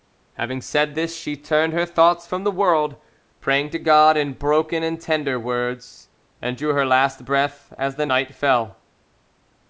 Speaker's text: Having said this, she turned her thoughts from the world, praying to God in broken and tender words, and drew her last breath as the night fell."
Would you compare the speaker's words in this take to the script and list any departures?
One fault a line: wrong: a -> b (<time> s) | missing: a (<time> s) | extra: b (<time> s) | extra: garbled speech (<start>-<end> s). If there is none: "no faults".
no faults